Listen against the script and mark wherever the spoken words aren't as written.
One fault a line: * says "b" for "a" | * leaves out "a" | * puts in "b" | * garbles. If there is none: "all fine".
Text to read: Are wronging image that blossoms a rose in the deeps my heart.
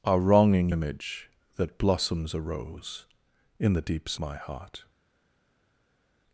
all fine